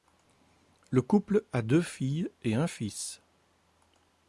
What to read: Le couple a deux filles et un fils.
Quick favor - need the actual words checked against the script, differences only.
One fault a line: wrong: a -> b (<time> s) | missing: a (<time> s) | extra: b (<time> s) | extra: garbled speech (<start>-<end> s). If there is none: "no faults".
no faults